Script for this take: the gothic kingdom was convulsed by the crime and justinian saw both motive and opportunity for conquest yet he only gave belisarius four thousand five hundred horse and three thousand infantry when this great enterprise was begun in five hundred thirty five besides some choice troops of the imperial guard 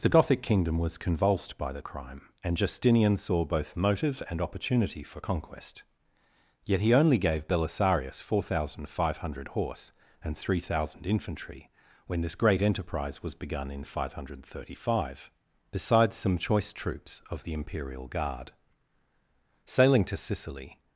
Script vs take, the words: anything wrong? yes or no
yes